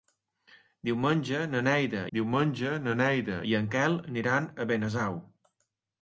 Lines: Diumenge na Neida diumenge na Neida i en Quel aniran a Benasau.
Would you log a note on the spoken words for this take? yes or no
no